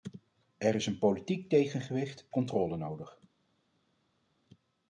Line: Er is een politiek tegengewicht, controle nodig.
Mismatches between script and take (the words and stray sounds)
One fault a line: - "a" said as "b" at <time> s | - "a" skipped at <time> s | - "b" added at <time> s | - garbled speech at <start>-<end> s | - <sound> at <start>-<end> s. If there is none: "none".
none